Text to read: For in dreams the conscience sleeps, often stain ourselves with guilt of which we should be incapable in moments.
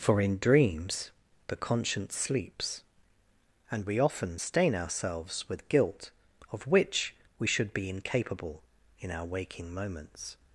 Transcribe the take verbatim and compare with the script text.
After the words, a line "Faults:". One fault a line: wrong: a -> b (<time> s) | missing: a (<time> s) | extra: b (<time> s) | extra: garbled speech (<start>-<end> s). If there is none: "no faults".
For in dreams the conscience sleeps, and we often stain ourselves with guilt of which we should be incapable in our waking moments.
Faults:
extra: and we (3.7 s)
extra: our waking (9.1 s)